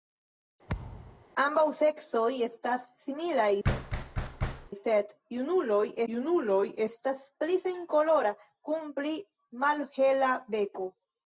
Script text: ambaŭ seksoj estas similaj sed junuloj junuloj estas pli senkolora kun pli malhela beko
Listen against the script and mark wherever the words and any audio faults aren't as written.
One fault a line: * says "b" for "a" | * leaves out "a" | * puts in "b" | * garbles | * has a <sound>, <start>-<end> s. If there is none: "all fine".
* has a thud, 0.7-1.3 s
* has a thud, 3.6-4.7 s